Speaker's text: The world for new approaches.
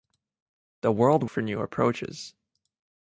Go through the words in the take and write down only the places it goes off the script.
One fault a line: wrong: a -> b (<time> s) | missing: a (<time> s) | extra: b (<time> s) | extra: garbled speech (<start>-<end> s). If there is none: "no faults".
no faults